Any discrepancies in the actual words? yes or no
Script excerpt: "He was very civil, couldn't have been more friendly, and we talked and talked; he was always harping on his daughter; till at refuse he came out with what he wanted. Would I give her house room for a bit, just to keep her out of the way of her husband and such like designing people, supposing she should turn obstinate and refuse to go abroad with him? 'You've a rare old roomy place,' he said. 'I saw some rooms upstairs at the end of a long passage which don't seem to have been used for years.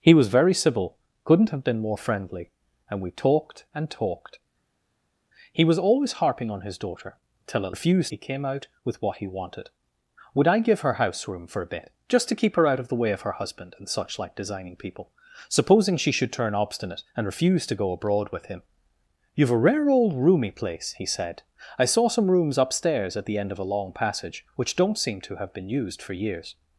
no